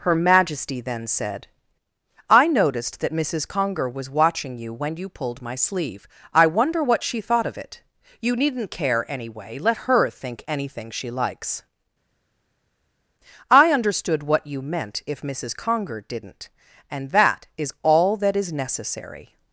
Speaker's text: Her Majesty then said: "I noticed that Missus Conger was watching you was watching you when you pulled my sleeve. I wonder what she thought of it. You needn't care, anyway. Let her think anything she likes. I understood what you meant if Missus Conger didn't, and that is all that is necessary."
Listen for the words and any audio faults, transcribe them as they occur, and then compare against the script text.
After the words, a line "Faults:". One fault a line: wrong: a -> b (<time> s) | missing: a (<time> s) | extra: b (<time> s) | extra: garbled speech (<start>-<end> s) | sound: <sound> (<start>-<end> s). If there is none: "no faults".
Her Majesty then said: "I noticed that Missus Conger was watching you when you pulled my sleeve. I wonder what she thought of it. You needn't care, anyway. Let her think anything she likes. I understood what you meant if Missus Conger didn't, and that is all that is necessary."
Faults:
missing: was watching you (4.7 s)